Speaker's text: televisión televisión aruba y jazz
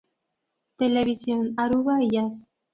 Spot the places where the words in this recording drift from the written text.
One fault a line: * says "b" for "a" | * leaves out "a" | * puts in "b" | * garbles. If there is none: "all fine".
* leaves out "televisión"